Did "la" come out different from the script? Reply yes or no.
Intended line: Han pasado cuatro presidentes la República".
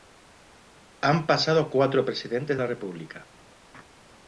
no